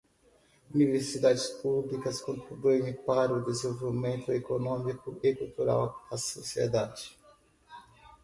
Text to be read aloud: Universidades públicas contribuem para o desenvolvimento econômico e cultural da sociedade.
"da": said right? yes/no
yes